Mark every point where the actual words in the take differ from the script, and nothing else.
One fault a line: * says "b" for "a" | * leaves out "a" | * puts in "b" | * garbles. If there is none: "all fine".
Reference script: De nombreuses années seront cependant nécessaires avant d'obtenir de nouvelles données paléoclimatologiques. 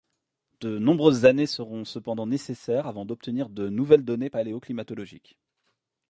all fine